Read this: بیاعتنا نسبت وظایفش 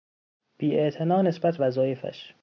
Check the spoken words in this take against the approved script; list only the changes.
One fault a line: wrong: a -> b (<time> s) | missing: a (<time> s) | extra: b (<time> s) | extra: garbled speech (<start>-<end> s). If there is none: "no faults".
no faults